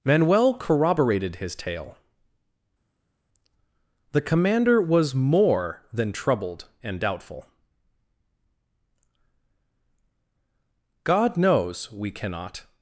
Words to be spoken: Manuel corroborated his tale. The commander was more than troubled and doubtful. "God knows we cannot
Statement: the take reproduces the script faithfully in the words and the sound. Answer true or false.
true